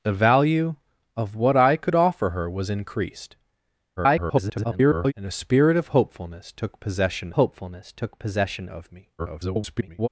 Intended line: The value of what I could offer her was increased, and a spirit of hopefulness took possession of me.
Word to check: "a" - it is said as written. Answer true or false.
true